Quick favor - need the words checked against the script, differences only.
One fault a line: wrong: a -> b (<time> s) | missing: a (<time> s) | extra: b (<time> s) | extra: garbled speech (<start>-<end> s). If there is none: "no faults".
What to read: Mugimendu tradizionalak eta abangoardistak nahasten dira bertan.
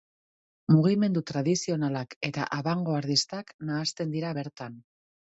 no faults